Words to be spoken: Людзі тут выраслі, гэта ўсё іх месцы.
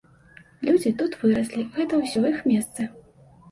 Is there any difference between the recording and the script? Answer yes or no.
no